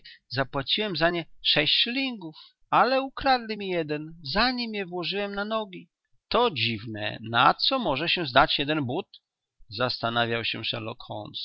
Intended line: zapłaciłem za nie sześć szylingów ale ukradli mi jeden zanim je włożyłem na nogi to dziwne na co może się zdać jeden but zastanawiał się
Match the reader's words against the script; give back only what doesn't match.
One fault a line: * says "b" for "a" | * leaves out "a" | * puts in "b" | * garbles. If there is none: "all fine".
all fine